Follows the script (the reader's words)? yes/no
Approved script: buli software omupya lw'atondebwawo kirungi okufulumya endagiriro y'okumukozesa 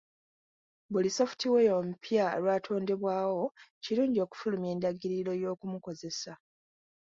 yes